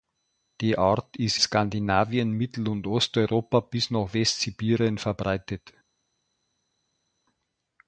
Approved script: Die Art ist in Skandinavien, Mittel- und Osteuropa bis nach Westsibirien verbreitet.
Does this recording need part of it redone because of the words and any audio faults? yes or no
yes